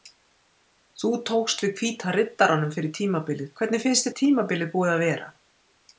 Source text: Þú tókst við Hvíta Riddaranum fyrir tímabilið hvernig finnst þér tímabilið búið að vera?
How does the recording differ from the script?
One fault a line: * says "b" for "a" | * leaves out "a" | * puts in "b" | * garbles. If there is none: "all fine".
all fine